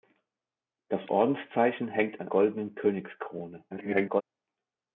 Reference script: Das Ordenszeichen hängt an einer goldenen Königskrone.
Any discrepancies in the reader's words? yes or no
yes